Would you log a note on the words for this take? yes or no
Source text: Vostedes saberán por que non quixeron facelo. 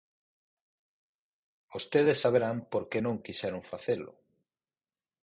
no